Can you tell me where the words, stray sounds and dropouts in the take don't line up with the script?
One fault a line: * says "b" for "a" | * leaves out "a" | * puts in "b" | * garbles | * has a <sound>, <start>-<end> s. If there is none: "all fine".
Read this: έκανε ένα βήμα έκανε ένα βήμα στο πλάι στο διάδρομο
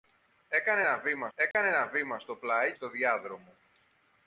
* has a dropout, 1.5-1.5 s